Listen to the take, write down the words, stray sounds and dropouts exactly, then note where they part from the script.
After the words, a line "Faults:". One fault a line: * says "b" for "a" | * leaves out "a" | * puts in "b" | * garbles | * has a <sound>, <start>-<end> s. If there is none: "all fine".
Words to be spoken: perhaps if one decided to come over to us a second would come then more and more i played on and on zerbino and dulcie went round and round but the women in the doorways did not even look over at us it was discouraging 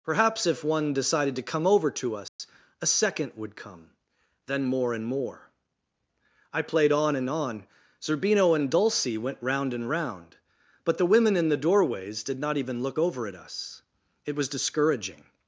perhaps if one decided to come over to us a second would come then more and more i played on and on zerbino and dulcie went round and round but the women in the doorways did not even look over at us it was discouraging
Faults:
* has a dropout, 2.3-2.4 s